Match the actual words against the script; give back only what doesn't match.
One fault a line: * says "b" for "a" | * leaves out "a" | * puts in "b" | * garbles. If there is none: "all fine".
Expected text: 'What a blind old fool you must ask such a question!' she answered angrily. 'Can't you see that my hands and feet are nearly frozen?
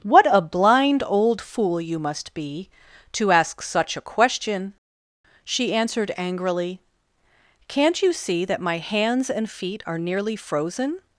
* puts in "be to"